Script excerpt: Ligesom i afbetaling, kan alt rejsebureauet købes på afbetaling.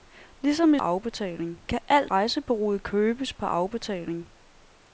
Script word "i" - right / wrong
right